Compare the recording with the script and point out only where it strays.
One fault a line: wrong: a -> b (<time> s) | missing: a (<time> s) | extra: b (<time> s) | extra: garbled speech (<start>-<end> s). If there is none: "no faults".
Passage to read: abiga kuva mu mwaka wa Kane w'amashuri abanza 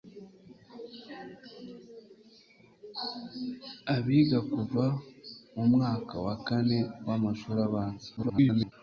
extra: garbled speech (8.2-8.7 s)